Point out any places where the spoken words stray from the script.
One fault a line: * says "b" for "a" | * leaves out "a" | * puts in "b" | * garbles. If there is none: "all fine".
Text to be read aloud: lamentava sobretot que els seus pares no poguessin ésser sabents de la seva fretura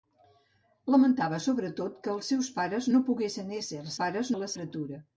* says "pares" for "sabents"
* leaves out "seva"